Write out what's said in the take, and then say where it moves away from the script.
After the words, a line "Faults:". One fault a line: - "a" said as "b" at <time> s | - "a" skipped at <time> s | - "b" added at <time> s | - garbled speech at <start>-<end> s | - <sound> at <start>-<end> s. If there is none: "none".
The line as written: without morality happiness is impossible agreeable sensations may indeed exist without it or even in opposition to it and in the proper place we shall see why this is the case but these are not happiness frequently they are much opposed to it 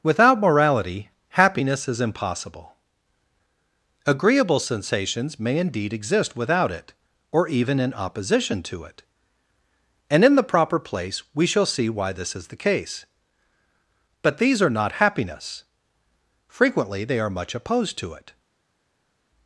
without morality happiness is impossible agreeable sensations may indeed exist without it or even in opposition to it and in the proper place we shall see why this is the case but these are not happiness frequently they are much opposed to it
Faults:
none